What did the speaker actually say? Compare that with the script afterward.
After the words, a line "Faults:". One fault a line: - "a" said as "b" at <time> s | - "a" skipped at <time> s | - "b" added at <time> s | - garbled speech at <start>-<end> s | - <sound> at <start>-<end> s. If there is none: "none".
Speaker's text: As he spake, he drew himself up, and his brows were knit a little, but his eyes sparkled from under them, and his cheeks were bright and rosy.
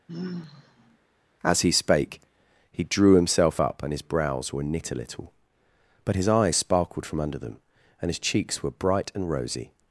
As he spake, he drew himself up, and his brows were knit a little, but his eyes sparkled from under them, and his cheeks were bright and rosy.
Faults:
- sigh at 0.1-1.0 s